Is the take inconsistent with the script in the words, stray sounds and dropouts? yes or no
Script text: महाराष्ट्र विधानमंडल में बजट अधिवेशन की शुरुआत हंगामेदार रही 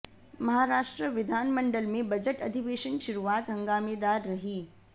yes